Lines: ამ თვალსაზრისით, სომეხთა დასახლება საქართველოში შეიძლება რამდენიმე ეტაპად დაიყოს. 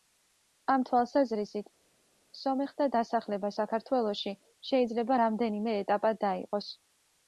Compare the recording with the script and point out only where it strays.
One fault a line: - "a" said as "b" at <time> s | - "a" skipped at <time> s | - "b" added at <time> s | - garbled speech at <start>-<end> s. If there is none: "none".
none